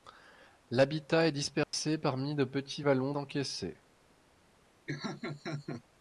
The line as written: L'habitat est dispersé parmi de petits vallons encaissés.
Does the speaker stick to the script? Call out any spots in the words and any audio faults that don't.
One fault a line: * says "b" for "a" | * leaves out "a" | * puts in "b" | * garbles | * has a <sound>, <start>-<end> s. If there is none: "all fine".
* has a dropout, 1.6-1.7 s
* has a laugh, 4.9-5.8 s